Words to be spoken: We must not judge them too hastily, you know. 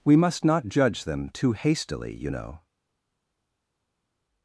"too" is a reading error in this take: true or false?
false